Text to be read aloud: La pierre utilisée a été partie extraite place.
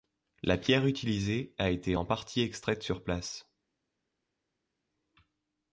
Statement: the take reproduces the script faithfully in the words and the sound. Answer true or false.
false